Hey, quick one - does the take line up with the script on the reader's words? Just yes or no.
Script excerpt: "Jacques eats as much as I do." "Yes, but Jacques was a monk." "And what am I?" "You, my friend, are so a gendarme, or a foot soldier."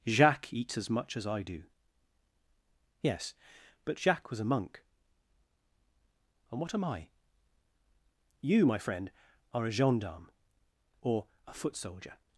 no